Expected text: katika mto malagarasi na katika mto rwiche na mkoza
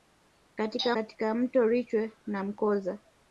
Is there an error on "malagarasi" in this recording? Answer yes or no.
yes